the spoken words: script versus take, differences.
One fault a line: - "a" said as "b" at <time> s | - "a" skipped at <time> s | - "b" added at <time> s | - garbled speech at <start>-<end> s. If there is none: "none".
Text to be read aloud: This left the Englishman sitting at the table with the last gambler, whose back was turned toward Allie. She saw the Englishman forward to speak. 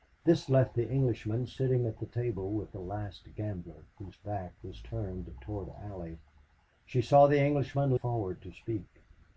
none